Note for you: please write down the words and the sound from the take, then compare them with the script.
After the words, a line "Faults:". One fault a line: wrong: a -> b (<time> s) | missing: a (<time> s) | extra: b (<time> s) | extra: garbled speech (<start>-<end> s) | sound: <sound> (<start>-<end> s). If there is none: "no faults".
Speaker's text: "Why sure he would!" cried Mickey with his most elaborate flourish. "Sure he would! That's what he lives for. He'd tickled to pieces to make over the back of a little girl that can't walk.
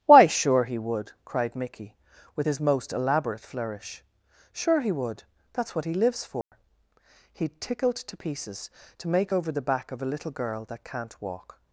"Why sure he would!" cried Mickey with his most elaborate flourish. "Sure he would! That's what he lives for. He'd tickled to pieces to make over the back of a little girl that can't walk.
Faults:
sound: dropout (6.4-6.5 s)